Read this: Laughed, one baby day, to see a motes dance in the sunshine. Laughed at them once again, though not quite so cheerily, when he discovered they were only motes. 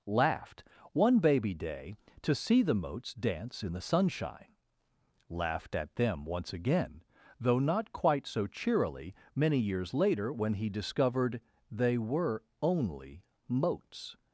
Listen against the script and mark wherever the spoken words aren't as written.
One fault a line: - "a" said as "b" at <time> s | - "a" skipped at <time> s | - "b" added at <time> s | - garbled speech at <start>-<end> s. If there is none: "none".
- "a" said as "the" at 2.6 s
- "many years later" added at 9.4 s